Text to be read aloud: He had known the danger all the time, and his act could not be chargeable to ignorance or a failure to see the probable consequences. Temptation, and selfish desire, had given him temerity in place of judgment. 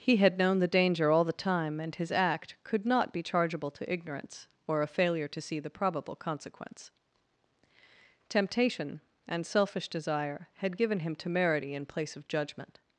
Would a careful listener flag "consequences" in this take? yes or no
yes